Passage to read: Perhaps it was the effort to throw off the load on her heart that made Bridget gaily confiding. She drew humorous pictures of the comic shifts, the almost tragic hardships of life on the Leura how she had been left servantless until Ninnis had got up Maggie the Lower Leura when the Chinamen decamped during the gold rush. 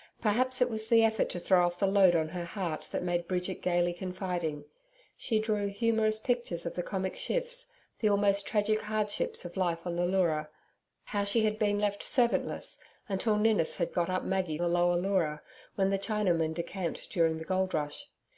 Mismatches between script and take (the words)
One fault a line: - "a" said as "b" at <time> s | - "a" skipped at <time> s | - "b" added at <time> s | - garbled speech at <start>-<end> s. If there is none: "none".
none